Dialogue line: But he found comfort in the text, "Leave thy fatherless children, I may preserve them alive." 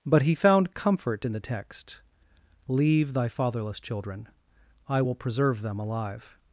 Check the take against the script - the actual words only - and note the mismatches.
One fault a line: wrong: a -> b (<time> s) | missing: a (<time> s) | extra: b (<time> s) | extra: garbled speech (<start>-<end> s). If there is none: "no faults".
wrong: may -> will (5.0 s)